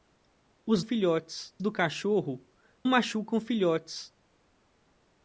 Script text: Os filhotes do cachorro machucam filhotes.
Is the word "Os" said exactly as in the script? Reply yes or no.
yes